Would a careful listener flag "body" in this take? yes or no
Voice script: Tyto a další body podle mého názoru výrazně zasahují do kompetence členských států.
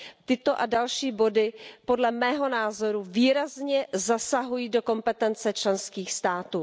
no